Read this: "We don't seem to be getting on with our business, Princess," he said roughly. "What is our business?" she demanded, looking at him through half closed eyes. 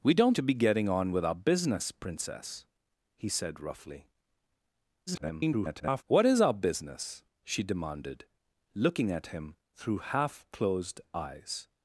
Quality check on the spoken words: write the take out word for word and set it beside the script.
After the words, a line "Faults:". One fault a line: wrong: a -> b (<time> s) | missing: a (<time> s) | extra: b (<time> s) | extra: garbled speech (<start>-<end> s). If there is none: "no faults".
"We don't to be getting on with our business, Princess," he said roughly. [garbled] "What is our business?" she demanded, looking at him through half closed eyes.
Faults:
missing: seem (0.4 s)
extra: garbled speech (5.1-6.0 s)